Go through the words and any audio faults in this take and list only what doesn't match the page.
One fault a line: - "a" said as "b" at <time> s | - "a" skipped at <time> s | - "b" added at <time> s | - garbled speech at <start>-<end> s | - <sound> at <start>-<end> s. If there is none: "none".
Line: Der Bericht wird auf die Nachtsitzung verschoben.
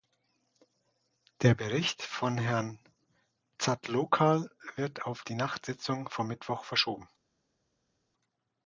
- "von Herrn Zatloukal" added at 2.0 s
- "vom Mittwoch" added at 6.0 s